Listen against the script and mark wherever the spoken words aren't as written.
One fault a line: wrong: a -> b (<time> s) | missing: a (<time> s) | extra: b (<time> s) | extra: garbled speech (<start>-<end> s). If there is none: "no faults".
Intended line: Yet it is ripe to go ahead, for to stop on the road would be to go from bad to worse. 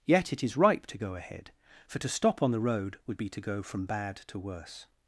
no faults